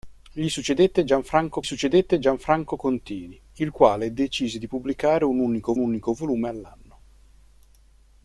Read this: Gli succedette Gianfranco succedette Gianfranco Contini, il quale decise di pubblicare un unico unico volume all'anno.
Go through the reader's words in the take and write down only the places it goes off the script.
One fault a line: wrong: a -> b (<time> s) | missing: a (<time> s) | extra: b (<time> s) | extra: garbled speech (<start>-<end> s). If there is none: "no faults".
no faults